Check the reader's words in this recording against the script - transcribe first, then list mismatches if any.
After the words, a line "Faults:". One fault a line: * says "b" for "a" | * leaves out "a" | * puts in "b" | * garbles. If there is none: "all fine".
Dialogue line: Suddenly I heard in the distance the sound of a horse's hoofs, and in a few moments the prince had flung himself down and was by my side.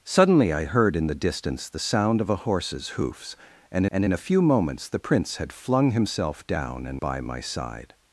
Suddenly I heard in the distance the sound of a horse's hoofs, and and in a few moments the prince had flung himself down and by my side.
Faults:
* puts in "and"
* leaves out "was"